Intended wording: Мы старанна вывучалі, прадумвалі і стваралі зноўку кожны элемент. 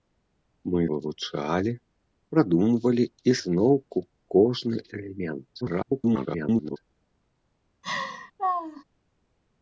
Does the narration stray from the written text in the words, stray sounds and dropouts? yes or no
yes